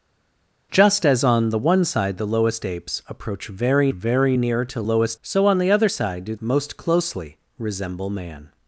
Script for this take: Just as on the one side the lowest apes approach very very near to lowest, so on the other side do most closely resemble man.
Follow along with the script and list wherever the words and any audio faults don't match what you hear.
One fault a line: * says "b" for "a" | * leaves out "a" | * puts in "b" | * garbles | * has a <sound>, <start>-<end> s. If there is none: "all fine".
all fine